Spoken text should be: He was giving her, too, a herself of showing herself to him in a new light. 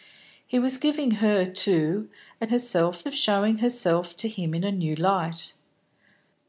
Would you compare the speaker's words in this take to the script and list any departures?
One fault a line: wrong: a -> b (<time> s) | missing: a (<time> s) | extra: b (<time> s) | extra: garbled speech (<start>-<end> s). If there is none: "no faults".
no faults